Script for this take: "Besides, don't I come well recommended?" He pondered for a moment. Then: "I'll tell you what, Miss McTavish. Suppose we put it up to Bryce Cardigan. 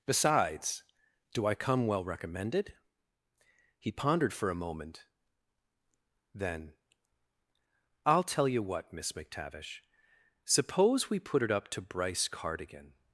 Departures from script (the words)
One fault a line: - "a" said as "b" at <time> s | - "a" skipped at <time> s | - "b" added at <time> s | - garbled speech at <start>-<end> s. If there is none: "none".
- "don't" said as "do" at 1.3 s